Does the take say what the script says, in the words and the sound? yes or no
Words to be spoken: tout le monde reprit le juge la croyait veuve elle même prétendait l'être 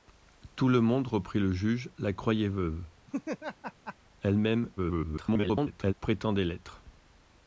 no